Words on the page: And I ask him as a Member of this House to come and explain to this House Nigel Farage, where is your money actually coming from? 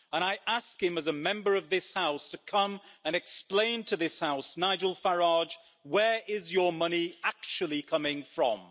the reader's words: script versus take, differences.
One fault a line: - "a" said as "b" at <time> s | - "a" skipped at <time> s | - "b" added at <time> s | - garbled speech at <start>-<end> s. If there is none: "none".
none